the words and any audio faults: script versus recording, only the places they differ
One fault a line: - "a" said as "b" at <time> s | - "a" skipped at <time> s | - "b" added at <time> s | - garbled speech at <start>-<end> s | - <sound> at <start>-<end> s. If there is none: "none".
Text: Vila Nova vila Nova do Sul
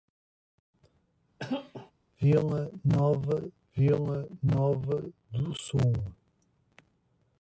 - cough at 1.4-1.9 s